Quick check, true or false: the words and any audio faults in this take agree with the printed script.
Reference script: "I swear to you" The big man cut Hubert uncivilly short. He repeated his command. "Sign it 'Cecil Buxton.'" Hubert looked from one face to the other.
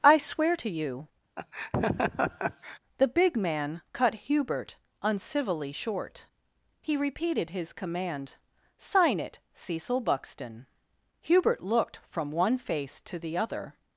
false